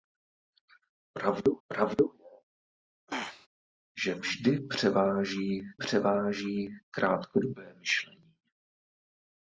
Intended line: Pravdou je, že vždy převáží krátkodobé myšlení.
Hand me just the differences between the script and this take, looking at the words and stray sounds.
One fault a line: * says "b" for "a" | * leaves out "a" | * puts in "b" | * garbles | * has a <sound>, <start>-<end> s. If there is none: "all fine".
* puts in "pravdou"
* has a throat clearing, 3.1-3.5 s
* puts in "převáží"